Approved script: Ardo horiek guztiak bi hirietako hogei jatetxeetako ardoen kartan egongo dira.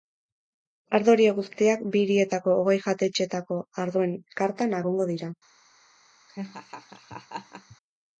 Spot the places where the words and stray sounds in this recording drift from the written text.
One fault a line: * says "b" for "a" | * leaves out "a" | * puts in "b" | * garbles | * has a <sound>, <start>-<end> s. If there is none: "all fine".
* has a laugh, 6.3-7.8 s